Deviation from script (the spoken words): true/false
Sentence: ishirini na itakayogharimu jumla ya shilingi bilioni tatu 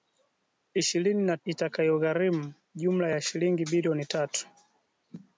false